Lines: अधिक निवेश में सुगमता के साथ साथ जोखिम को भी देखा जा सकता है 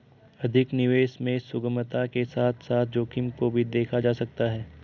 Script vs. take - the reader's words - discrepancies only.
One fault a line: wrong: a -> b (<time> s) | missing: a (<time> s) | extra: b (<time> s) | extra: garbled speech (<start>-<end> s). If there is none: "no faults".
no faults